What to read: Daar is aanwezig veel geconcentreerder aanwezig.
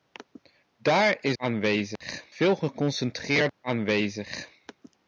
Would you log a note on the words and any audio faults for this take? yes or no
yes